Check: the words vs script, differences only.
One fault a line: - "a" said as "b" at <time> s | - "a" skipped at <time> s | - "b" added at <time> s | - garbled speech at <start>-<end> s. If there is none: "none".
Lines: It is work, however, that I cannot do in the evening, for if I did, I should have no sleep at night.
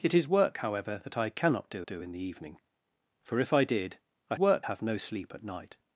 - "do" added at 1.9 s
- "should" said as "work" at 4.4 s